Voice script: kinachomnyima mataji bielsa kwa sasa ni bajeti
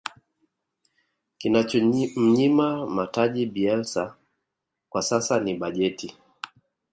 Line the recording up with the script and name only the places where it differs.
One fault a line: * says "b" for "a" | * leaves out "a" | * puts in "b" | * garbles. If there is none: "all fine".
all fine